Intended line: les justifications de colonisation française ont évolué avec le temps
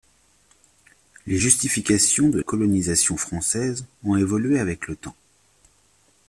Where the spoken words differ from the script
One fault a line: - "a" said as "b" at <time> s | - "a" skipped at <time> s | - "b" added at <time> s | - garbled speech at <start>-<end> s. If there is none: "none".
none